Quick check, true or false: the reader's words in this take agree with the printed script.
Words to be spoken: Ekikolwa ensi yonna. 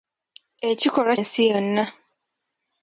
true